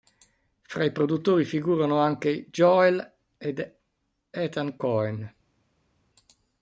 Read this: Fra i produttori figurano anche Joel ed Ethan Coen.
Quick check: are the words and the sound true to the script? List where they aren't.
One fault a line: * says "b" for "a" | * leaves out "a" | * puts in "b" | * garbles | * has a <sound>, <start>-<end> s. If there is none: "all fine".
all fine